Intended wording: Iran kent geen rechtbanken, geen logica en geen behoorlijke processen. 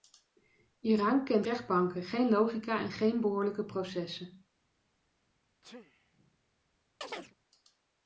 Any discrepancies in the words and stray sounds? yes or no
yes